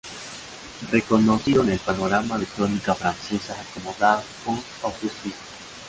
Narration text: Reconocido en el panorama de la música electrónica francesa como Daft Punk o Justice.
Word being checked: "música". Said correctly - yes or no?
no